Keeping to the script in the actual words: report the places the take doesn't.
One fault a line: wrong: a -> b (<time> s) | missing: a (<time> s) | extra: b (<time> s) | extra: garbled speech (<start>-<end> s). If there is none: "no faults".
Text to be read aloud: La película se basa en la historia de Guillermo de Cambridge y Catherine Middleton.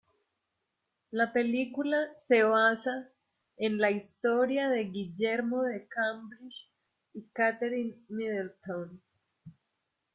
no faults